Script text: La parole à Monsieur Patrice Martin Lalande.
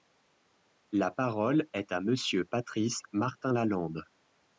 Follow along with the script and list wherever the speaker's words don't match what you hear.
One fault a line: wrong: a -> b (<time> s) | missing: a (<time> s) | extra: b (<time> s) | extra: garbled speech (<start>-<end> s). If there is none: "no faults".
extra: est (1.7 s)